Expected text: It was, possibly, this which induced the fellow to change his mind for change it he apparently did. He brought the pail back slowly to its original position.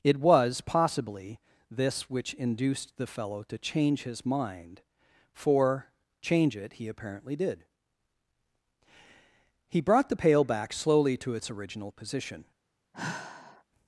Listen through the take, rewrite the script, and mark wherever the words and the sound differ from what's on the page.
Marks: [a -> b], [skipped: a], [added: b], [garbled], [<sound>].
It was, possibly, this which induced the fellow to change his mind for change it he apparently did. He brought the pail back slowly to its original position. [sigh]